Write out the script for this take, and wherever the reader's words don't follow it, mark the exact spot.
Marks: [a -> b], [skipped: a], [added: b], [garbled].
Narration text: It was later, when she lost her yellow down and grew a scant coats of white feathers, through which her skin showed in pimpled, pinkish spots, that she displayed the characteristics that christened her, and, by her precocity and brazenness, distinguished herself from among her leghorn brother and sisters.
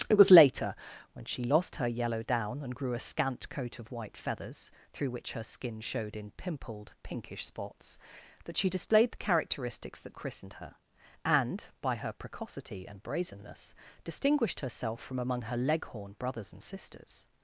It was later, when she lost her yellow down and grew a scant [coats -> coat] of white feathers, through which her skin showed in pimpled, pinkish spots, that she displayed the characteristics that christened her, and, by her precocity and brazenness, distinguished herself from among her leghorn [brother -> brothers] and sisters.